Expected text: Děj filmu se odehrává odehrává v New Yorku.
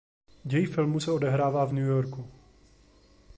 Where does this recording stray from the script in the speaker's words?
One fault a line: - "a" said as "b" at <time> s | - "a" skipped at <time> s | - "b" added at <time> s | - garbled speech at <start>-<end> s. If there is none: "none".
- "odehrává" skipped at 1.6 s